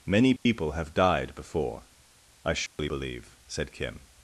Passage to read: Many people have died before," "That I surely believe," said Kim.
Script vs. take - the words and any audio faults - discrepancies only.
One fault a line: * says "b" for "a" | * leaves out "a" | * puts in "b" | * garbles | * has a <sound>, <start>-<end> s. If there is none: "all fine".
* has a dropout, 0.4-0.5 s
* leaves out "That"
* has a dropout, 2.7-2.8 s